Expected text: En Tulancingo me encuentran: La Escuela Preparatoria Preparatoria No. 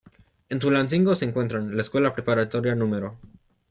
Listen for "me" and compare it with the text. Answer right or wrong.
wrong